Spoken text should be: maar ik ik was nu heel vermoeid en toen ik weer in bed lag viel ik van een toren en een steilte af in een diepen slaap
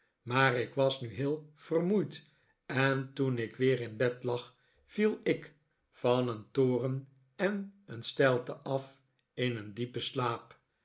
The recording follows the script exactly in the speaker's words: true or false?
false